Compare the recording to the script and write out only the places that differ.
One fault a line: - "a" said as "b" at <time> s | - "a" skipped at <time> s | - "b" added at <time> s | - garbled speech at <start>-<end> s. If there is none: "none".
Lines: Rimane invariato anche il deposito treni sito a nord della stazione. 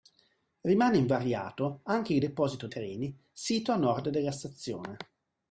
none